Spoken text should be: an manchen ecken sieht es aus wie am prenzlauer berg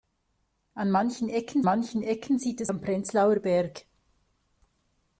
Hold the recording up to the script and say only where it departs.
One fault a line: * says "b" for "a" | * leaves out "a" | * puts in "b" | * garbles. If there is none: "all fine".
* puts in "manchen ecken"
* leaves out "aus wie"